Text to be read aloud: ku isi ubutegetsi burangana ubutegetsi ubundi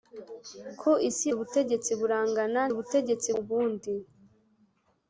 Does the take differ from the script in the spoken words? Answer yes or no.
no